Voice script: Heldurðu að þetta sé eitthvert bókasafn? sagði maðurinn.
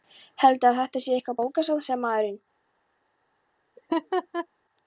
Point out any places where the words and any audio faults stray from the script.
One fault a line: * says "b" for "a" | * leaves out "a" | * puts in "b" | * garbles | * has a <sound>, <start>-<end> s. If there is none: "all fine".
* has a laugh, 3.8-4.5 s